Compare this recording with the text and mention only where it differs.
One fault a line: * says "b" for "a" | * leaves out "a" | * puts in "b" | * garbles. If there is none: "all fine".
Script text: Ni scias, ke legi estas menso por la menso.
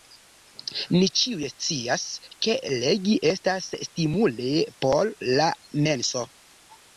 * puts in "ĉiuj"
* says "stimule" for "menso"